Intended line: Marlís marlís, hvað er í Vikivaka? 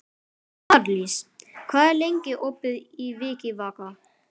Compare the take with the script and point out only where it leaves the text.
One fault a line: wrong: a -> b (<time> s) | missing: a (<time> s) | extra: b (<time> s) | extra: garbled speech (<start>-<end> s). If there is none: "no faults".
missing: marlís (1.2 s)
extra: lengi opið (2.0 s)